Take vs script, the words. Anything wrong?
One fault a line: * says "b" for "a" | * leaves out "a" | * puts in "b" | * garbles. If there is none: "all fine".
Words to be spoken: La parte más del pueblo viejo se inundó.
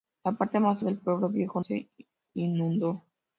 all fine